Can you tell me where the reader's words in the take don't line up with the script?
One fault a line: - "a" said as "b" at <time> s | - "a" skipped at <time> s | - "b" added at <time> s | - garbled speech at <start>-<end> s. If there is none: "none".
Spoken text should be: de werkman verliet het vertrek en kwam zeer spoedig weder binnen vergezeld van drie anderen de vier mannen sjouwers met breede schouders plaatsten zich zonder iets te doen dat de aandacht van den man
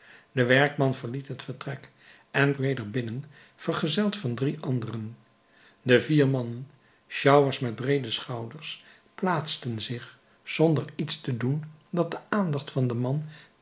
- "kwam zeer spoedig" skipped at 2.6 s